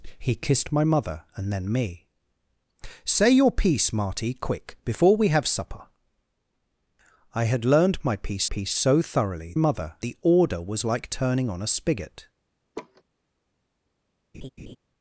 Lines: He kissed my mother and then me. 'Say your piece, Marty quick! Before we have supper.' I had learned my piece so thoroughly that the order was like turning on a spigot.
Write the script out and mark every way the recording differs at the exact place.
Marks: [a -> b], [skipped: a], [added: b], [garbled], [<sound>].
He kissed my mother and then me. 'Say your piece, Marty quick! Before we have supper.' I had learned my piece [added: piece] so thoroughly [that -> mother] the order was like turning on a spigot. [laugh] [laugh]